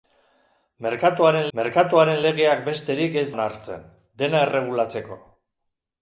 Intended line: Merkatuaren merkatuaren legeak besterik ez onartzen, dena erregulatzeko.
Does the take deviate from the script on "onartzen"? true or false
false